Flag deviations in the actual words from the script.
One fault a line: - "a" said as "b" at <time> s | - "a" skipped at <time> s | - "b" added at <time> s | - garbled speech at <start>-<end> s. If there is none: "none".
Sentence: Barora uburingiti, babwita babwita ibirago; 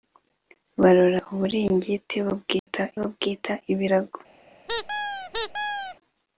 none